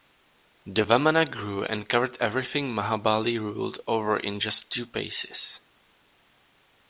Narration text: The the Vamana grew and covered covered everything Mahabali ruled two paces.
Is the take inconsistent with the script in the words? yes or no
yes